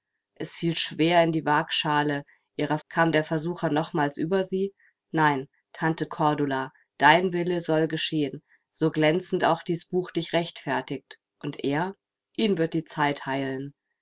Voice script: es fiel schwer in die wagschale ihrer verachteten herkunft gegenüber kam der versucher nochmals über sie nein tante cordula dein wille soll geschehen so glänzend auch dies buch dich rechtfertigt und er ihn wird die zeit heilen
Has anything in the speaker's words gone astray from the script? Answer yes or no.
yes